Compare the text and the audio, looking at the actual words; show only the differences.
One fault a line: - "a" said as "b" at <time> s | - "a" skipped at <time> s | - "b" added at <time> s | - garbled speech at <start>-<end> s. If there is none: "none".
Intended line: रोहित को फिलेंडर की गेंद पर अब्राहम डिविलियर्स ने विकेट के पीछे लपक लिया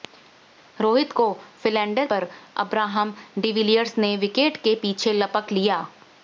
- "की गेंद" skipped at 2.1 s